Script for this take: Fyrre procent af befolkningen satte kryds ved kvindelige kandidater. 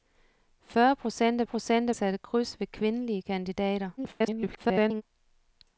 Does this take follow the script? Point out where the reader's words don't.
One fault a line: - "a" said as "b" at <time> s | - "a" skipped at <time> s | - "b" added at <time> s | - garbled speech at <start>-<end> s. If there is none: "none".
- "befolkningen" said as "procent" at 1.4 s
- garbled speech at 4.0-5.0 s